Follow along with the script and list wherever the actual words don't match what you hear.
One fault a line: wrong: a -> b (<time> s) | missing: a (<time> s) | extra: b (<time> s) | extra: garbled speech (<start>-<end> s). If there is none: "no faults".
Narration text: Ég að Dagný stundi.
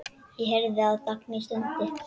extra: heyrði (0.5 s)